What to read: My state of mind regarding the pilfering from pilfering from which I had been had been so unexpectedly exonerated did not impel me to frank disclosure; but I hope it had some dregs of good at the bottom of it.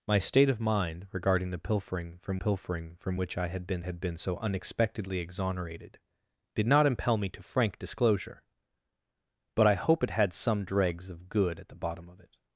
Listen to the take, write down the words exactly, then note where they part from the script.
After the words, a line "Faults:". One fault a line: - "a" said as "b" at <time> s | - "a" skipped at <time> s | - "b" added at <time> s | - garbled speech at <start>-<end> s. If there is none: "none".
My state of mind regarding the pilfering from pilfering from which I had been had been so unexpectedly exonerated did not impel me to frank disclosure; but I hope it had some dregs of good at the bottom of it.
Faults:
none